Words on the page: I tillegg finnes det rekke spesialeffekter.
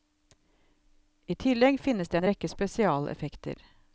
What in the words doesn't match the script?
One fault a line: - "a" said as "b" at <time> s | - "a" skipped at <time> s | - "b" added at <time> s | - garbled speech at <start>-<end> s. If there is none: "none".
- "en" added at 2.1 s